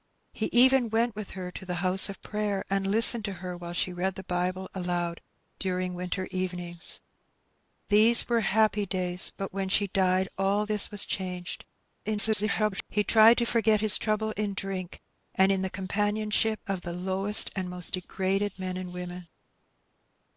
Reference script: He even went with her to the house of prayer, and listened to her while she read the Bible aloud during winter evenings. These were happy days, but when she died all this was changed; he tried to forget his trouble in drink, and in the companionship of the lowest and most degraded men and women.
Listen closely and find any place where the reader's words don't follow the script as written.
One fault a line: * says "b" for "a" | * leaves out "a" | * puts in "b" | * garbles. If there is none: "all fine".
* garbles